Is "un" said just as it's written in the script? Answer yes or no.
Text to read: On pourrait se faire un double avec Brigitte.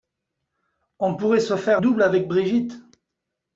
no